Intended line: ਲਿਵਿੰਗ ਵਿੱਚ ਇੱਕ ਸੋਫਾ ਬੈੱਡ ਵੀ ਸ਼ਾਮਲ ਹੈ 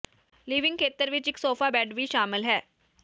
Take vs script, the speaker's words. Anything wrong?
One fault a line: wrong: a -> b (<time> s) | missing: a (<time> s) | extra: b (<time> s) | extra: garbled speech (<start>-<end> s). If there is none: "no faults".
extra: ਖੇਤਰ (0.8 s)